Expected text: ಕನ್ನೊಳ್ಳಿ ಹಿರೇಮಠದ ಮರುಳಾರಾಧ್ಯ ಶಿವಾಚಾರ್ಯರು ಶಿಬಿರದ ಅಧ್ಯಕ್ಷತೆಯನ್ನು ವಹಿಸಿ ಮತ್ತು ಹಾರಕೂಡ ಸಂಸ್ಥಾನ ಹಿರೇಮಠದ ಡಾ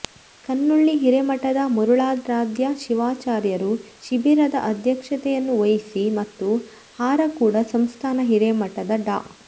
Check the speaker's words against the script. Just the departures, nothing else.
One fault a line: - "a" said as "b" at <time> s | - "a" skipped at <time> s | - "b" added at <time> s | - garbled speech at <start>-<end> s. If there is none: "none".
none